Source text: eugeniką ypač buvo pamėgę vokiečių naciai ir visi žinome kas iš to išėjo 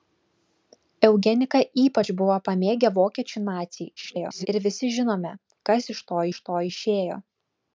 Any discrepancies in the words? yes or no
yes